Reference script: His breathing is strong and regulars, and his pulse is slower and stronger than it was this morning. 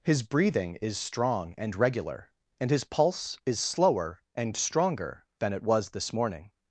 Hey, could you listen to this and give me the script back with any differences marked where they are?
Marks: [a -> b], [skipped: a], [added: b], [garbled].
His breathing is strong and [regulars, -> regular] and his pulse is slower and stronger than it was this morning.